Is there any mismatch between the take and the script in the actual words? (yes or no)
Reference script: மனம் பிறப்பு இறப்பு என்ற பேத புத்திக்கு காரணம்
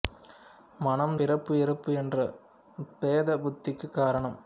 no